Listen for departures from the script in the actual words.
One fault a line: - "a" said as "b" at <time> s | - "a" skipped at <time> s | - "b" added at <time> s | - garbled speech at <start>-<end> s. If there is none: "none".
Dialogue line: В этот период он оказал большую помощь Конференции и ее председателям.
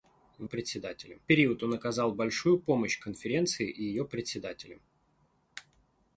- "этот" said as "председателям" at 0.4 s